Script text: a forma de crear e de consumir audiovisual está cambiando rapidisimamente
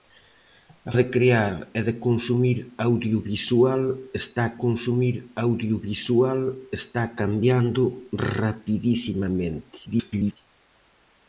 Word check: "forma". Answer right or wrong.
wrong